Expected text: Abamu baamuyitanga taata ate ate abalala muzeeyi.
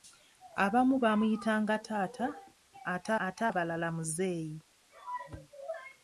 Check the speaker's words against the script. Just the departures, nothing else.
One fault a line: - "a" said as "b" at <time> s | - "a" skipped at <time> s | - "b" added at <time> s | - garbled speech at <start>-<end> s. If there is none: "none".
none